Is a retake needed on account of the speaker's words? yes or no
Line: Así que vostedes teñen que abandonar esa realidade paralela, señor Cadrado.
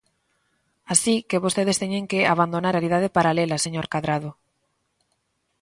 yes